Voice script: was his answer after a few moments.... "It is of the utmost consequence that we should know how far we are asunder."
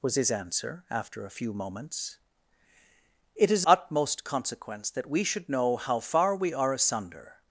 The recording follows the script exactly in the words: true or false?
false